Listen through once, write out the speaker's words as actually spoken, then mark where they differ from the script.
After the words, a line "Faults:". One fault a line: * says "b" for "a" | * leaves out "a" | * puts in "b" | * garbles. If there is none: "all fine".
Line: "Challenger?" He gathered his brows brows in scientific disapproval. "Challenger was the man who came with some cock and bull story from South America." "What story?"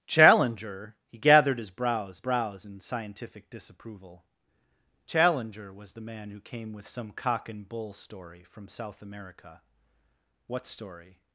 "Challenger?" He gathered his brows brows in scientific disapproval. "Challenger was the man who came with some cock and bull story from South America." "What story?"
Faults:
all fine